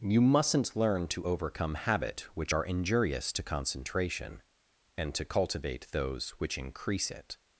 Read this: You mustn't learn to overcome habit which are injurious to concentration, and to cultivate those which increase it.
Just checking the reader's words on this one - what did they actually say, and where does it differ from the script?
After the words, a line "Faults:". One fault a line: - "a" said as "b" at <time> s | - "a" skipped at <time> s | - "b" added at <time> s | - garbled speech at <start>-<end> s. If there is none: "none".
You mustn't learn to overcome habit which are injurious to concentration, and to cultivate those which increase it.
Faults:
none